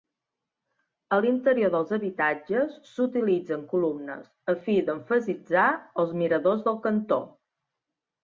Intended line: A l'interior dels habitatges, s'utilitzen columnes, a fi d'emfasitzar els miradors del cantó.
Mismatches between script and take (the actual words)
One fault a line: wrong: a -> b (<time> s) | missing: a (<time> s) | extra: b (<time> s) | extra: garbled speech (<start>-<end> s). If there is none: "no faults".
no faults